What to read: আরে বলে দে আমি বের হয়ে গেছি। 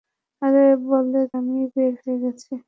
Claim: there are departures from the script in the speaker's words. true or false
true